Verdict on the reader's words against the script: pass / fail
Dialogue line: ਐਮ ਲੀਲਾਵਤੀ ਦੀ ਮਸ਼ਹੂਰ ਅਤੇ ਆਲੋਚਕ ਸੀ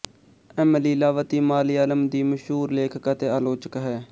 fail